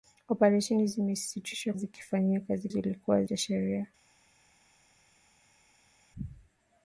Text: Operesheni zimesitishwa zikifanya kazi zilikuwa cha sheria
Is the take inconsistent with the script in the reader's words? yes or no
no